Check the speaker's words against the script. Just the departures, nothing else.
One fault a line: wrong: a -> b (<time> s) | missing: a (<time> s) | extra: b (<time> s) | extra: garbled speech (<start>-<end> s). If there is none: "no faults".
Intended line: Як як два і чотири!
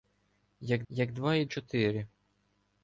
no faults